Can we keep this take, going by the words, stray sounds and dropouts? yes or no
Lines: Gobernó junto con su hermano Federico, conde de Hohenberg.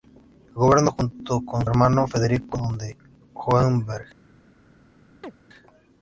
no